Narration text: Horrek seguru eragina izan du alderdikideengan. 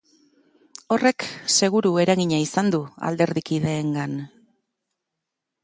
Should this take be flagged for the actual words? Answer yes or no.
no